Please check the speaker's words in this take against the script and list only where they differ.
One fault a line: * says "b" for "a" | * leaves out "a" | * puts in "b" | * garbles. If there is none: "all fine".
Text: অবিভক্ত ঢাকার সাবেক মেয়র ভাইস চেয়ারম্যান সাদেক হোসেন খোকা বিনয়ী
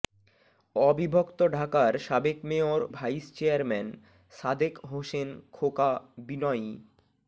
all fine